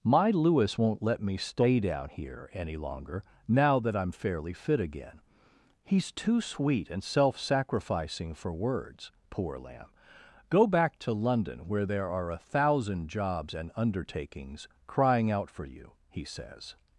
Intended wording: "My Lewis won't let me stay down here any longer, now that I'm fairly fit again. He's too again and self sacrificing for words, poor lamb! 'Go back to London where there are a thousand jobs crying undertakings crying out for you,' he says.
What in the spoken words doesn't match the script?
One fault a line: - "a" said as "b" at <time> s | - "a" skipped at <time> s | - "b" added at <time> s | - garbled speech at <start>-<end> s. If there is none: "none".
- "again" said as "sweet" at 6.4 s
- "crying" said as "and" at 13.5 s